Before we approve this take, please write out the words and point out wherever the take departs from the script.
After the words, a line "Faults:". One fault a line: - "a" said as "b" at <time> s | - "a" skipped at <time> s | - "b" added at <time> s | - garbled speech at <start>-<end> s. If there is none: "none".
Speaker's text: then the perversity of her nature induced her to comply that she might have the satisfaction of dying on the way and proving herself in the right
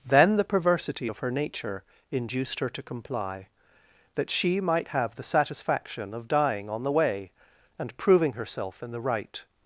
then the perversity of her nature induced her to comply that she might have the satisfaction of dying on the way and proving herself in the right
Faults:
none